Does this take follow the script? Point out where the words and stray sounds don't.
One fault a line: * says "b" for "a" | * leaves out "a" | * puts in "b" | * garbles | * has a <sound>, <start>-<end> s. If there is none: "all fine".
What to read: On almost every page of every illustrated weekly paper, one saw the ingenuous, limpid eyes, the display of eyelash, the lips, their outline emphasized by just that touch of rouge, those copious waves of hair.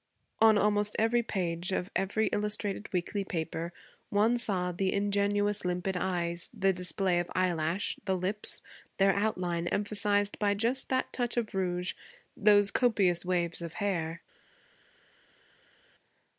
all fine